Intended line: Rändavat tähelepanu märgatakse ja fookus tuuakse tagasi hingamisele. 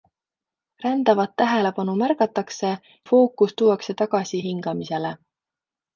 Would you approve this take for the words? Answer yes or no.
no